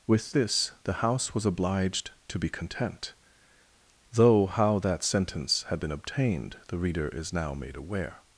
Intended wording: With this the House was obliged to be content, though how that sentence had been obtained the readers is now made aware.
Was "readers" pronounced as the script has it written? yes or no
no